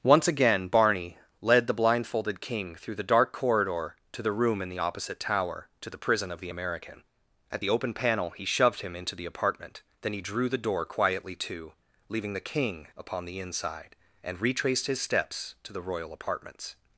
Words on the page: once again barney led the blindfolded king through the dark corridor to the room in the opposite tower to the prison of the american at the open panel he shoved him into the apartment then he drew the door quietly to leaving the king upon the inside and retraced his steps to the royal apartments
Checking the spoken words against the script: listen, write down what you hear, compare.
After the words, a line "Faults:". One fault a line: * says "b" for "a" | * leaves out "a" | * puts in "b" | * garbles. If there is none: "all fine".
once again barney led the blindfolded king through the dark corridor to the room in the opposite tower to the prison of the american at the open panel he shoved him into the apartment then he drew the door quietly to leaving the king upon the inside and retraced his steps to the royal apartments
Faults:
all fine